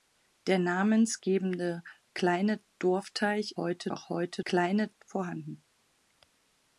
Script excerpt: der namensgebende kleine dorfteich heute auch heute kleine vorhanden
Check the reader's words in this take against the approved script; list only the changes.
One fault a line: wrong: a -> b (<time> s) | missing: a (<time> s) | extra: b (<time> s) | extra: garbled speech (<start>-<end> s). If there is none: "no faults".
no faults